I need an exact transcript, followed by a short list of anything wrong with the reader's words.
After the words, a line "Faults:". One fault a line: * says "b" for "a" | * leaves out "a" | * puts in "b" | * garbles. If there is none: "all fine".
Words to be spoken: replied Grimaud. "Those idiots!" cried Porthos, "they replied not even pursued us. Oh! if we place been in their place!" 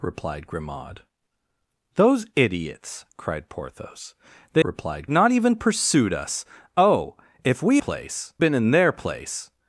replied Grimaud. "Those idiots!" cried Porthos, "they replied not even pursued us. Oh! if we place been in their place!"
Faults:
all fine